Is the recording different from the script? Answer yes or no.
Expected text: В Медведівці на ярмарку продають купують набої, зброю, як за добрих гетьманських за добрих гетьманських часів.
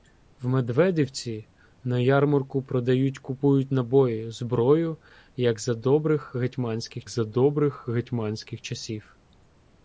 no